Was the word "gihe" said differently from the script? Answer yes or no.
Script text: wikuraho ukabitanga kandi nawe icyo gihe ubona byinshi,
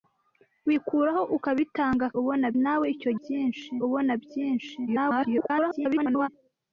yes